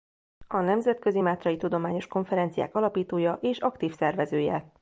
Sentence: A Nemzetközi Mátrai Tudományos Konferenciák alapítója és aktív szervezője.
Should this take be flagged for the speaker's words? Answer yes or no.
no